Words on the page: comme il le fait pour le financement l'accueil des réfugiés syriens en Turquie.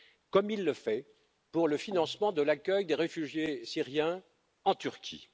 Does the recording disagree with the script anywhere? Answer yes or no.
yes